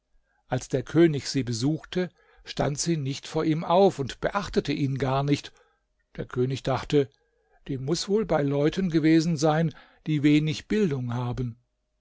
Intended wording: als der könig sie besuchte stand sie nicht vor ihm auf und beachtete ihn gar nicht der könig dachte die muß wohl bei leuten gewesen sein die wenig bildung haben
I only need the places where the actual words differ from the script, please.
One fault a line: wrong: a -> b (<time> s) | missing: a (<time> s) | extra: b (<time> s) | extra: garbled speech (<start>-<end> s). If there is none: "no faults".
no faults